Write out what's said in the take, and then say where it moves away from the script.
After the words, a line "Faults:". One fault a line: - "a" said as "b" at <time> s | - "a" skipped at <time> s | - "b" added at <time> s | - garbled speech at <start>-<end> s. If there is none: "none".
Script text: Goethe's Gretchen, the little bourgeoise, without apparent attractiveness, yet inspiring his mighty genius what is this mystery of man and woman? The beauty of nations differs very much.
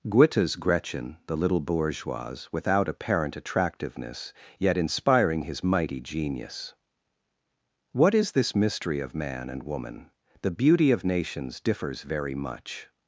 Goethe's Gretchen, the little bourgeoise, without apparent attractiveness, yet inspiring his mighty genius what is this mystery of man and woman? The beauty of nations differs very much.
Faults:
none